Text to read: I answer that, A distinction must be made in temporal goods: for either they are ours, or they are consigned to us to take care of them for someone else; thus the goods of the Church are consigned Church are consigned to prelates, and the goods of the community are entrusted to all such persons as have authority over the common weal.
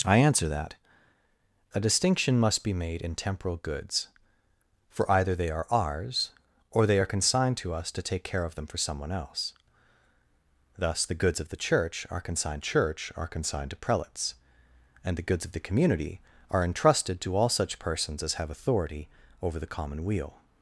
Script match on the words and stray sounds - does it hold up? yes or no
yes